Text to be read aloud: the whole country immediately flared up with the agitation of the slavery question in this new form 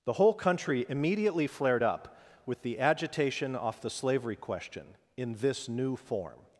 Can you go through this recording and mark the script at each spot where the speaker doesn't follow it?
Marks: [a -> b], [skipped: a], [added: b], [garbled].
the whole country immediately flared up with the agitation [of -> off] the slavery question in this new form